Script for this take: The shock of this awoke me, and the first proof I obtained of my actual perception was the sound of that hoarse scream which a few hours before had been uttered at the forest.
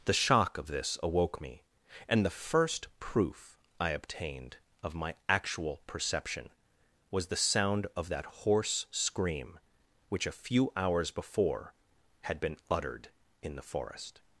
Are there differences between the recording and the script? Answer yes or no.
yes